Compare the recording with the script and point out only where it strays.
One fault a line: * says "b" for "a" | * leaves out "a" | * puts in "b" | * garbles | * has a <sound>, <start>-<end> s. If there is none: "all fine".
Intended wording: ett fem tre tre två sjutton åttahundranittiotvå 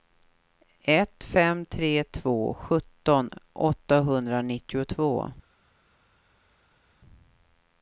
* leaves out "tre"